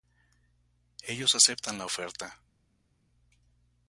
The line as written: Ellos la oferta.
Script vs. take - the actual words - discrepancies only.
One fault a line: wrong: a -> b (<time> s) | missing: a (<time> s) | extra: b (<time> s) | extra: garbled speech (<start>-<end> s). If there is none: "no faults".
extra: aceptan (1.4 s)